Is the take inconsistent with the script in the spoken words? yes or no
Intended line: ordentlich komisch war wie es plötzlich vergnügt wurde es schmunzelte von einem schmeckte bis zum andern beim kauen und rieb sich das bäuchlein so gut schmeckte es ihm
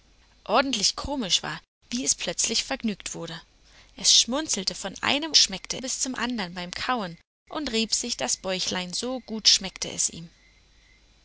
no